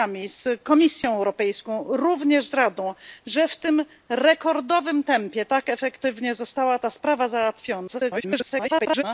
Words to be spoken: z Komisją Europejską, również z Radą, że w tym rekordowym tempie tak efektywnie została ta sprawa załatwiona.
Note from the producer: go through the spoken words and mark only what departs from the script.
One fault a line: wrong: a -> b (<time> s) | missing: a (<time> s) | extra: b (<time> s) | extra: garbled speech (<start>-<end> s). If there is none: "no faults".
extra: garbled speech (7.9-9.0 s)